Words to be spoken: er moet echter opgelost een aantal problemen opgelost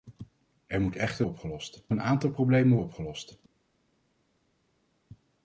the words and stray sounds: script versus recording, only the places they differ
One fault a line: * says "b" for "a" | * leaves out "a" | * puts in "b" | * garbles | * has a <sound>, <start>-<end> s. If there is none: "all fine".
all fine